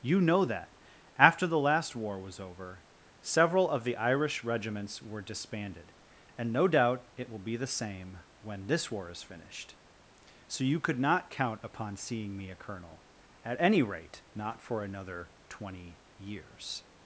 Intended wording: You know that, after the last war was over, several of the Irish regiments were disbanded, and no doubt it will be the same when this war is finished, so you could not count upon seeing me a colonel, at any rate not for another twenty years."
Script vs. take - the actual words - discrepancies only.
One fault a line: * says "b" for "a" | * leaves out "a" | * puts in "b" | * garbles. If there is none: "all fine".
all fine